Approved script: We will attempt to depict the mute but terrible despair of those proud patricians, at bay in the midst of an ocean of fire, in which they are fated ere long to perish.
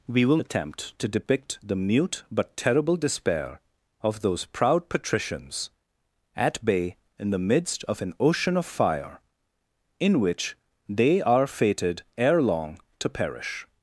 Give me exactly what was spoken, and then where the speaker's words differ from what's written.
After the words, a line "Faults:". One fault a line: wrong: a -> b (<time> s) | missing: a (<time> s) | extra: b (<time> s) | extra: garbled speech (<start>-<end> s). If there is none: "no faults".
We will attempt to depict the mute but terrible despair of those proud patricians, at bay in the midst of an ocean of fire, in which they are fated ere long to perish.
Faults:
no faults